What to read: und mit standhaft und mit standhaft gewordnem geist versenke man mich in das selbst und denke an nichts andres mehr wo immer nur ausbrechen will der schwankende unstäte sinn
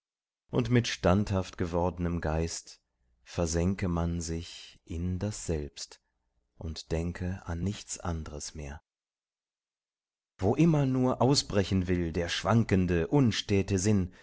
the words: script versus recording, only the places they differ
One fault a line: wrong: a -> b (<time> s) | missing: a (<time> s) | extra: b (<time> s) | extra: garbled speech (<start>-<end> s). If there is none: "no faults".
missing: und mit standhaft (1.6 s)
wrong: mich -> sich (4.2 s)